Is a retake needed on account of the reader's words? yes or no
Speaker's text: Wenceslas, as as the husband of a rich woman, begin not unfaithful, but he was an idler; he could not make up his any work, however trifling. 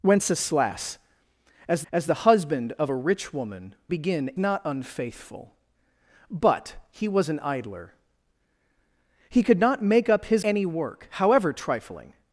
no